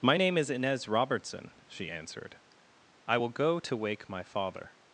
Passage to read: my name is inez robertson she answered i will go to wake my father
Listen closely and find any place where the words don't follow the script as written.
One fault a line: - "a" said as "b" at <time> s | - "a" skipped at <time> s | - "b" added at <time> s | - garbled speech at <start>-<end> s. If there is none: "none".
none